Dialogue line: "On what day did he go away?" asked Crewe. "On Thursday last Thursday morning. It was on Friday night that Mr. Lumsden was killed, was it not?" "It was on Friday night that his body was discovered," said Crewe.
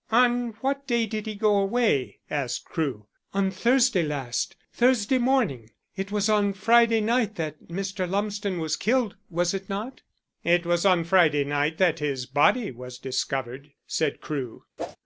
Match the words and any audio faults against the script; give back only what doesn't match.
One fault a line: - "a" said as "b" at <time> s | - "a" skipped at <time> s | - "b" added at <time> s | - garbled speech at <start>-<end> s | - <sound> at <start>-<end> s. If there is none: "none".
- whoosh at 14.8-15.0 s